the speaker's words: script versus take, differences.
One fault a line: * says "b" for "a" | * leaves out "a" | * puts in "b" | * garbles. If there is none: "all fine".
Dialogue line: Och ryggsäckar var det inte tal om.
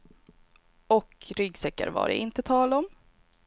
all fine